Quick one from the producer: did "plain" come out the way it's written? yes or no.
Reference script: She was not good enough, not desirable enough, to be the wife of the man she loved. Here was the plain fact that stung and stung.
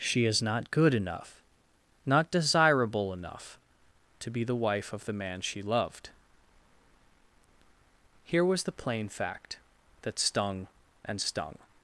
yes